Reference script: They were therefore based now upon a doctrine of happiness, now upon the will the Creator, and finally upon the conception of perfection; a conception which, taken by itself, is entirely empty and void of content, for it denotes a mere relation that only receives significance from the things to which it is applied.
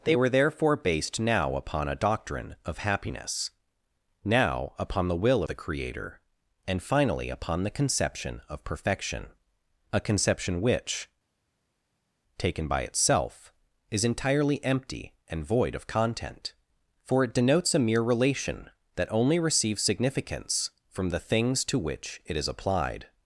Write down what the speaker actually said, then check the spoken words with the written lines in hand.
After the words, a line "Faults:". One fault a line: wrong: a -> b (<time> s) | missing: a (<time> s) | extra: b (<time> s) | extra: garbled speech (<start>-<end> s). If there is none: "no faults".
They were therefore based now upon a doctrine of happiness, now upon the will the Creator, and finally upon the conception of perfection; a conception which, taken by itself, is entirely empty and void of content, for it denotes a mere relation that only receives significance from the things to which it is applied.
Faults:
no faults